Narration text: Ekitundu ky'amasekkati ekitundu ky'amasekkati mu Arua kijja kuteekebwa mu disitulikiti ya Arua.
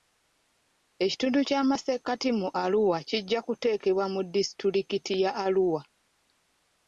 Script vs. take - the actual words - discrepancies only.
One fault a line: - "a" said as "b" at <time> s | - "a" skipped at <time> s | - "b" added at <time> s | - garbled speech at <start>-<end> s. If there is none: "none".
- "ekitundu ky'amasekkati" skipped at 2.3 s